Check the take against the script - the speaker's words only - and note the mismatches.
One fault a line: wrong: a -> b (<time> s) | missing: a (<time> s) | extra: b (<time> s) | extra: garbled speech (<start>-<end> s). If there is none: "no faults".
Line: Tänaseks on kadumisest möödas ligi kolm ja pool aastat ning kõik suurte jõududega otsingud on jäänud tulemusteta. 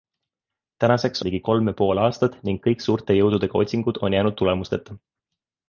missing: on kadumisest möödas (1.2 s)